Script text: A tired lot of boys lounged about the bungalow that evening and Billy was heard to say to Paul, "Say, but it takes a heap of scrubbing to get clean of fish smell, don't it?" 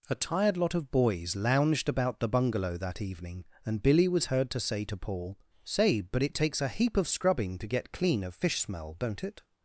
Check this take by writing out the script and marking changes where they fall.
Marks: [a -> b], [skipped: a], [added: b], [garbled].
A tired lot of boys lounged about the bungalow that evening and Billy was heard to say to Paul, "Say, but it takes a heap of scrubbing to get clean of fish smell, don't it?"